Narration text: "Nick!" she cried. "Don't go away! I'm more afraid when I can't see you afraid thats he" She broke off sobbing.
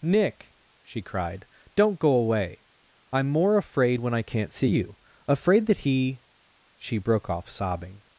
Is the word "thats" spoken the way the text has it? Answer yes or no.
no